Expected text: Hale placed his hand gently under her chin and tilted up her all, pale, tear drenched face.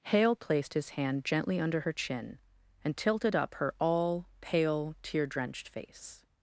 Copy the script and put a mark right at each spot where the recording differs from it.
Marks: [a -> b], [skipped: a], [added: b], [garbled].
Hale placed his hand gently under her chin and tilted up her all, pale, tear drenched face.